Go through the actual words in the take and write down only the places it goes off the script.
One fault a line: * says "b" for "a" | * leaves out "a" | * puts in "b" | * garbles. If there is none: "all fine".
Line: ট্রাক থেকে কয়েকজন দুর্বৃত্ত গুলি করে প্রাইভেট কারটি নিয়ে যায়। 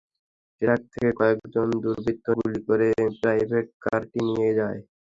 all fine